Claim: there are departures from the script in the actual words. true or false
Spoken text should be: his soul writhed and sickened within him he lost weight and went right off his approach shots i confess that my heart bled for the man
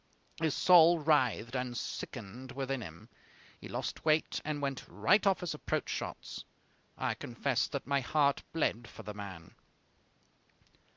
false